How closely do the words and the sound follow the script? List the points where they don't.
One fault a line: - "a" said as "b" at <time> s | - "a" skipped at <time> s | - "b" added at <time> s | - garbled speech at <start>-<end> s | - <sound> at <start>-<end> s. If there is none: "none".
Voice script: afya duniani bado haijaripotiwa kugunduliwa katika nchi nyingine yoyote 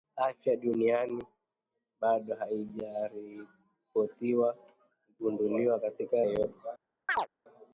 - "nchi nyingine" skipped at 6.2 s
- chirp at 7.1-7.3 s